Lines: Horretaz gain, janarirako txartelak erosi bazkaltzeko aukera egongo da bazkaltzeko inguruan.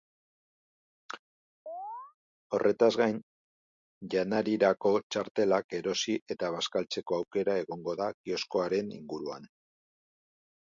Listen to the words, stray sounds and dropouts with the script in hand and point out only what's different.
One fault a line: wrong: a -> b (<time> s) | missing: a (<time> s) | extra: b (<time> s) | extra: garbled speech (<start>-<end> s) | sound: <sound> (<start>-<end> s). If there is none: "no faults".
sound: chirp (1.7-2.2 s)
extra: eta (6.4 s)
wrong: bazkaltzeko -> kioskoaren (8.2 s)